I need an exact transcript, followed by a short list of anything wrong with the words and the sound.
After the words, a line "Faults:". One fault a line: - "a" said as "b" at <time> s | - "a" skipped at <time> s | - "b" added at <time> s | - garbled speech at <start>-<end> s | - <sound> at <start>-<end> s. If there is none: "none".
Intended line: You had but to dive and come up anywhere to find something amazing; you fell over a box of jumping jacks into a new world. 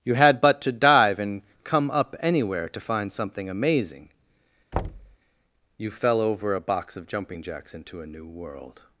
You had but to dive and come up anywhere to find something amazing; you fell over a box of jumping jacks into a new world.
Faults:
- thud at 4.7-5.2 s